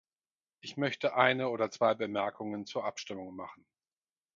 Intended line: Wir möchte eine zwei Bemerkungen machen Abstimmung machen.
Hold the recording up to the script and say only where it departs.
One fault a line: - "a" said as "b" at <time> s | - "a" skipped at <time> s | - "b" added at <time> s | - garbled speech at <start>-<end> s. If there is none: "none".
- "Wir" said as "Ich" at 0.6 s
- "oder" added at 1.5 s
- "machen" said as "zur" at 2.6 s